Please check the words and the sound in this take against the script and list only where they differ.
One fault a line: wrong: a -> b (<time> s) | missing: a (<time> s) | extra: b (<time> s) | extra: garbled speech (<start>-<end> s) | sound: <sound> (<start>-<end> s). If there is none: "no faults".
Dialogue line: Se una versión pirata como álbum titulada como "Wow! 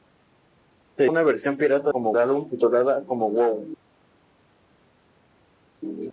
no faults